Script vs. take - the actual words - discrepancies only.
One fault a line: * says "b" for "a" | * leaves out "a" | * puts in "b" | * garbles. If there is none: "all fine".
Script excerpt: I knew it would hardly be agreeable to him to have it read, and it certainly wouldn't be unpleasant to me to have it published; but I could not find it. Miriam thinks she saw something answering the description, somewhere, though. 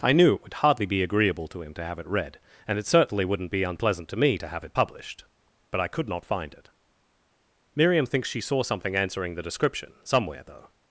all fine